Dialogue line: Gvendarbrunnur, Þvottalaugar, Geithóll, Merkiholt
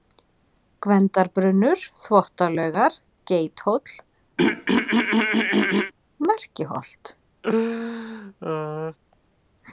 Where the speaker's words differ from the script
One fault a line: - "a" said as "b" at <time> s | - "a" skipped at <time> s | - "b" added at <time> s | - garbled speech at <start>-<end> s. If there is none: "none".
none